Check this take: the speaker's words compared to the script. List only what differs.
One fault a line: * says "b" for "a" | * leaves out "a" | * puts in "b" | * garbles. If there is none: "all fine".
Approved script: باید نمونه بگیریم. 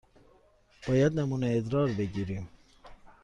* puts in "ادرار"